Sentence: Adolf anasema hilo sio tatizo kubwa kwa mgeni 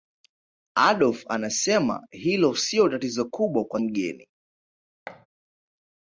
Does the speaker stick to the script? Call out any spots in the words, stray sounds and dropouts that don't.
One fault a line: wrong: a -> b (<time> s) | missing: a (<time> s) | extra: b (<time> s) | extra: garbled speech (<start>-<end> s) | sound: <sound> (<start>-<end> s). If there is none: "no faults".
sound: thud (5.1-5.3 s)